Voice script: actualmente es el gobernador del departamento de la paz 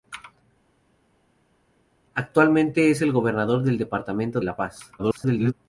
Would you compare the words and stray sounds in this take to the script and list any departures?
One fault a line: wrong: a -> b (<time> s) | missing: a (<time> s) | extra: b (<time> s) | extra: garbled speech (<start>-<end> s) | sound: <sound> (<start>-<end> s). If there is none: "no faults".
missing: de (4.4 s)
extra: garbled speech (5.0-5.5 s)